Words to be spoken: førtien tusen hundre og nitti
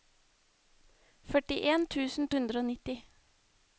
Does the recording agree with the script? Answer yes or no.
yes